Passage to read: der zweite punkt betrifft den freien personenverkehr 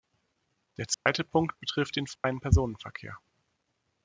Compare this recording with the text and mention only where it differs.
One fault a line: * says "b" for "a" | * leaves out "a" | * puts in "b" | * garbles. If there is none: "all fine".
all fine